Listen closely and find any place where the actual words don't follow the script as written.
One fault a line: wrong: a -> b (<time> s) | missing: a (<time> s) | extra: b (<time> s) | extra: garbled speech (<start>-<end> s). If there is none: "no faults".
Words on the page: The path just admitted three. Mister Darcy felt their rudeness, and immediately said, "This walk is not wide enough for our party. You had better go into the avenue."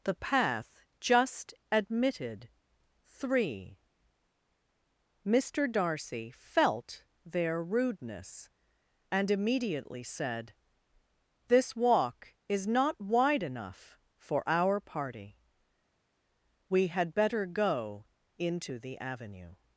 wrong: You -> We (16.7 s)